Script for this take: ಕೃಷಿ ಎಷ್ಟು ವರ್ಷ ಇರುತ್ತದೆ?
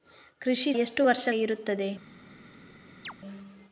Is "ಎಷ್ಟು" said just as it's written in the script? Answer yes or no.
yes